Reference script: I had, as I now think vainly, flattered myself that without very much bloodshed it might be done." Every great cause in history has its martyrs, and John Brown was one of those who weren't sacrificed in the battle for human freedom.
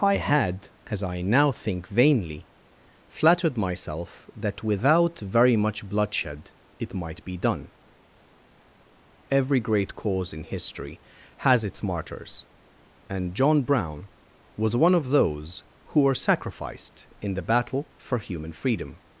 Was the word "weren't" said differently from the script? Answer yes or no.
yes